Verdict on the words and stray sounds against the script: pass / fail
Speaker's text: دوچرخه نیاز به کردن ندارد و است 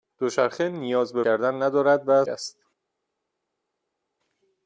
pass